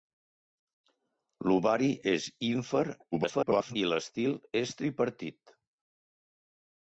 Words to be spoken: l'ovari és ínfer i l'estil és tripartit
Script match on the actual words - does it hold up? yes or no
no